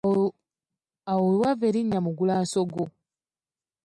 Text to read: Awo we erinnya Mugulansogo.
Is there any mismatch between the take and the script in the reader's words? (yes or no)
yes